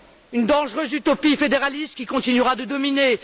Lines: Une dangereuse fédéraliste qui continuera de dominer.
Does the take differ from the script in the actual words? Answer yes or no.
yes